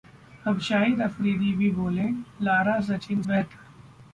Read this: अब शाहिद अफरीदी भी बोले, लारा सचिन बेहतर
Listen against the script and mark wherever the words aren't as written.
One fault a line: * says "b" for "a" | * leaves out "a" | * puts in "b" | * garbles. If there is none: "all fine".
all fine